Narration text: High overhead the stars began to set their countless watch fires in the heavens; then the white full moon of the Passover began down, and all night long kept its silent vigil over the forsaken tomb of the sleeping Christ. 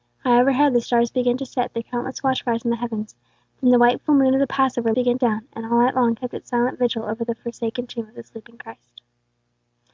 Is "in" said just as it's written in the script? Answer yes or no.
yes